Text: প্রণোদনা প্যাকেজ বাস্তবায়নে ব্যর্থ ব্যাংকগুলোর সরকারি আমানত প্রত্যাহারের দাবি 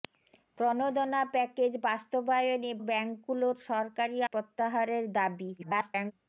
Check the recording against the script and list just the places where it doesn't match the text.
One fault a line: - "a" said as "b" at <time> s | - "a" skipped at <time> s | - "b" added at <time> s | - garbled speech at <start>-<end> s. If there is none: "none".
- "ব্যর্থ" skipped at 2.7 s
- "আমানত" skipped at 4.2 s
- garbled speech at 5.6-6.1 s